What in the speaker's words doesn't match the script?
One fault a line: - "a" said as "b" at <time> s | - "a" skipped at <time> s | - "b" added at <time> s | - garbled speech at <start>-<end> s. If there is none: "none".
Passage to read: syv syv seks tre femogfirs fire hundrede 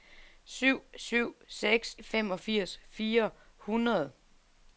- "tre" skipped at 1.9 s